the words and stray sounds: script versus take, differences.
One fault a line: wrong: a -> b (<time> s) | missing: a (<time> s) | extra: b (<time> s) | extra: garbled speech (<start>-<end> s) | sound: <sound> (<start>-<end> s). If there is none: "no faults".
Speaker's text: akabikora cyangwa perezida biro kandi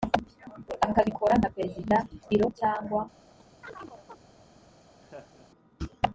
wrong: cyangwa -> nka (1.4 s)
wrong: kandi -> cyangwa (2.6 s)
sound: chirp (3.4-4.2 s)
sound: laugh (5.0-5.5 s)